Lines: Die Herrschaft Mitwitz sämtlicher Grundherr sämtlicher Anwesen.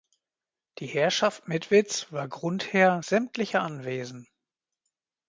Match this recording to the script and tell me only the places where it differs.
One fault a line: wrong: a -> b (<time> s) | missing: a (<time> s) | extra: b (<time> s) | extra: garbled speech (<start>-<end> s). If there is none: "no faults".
wrong: sämtlicher -> war (2.1 s)